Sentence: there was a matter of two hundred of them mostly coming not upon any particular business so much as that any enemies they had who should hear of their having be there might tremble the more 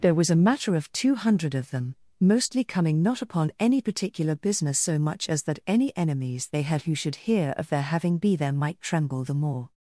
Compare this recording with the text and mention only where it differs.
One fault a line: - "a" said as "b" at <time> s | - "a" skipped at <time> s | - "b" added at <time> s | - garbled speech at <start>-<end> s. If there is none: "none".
none